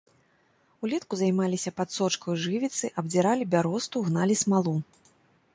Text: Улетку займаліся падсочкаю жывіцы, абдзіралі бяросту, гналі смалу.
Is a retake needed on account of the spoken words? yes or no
no